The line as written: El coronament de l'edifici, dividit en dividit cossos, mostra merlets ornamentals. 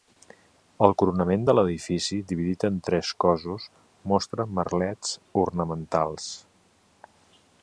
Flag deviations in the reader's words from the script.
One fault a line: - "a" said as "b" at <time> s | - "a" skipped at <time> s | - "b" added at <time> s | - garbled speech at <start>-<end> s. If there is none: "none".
- "dividit" said as "tres" at 2.9 s